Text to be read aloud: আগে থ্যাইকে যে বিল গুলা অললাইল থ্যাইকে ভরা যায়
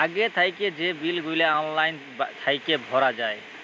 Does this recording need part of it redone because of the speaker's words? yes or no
no